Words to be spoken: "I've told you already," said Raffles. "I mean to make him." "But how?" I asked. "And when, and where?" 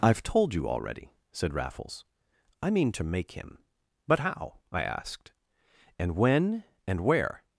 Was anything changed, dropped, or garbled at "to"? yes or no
no